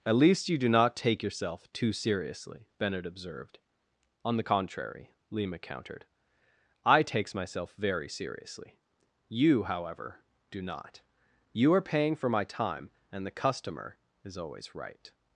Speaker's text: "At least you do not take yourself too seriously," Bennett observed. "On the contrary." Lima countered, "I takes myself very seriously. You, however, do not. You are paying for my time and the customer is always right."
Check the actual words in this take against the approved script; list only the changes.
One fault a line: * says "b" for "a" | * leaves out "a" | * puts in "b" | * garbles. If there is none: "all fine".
all fine